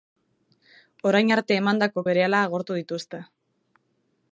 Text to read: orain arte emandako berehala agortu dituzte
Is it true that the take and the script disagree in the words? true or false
false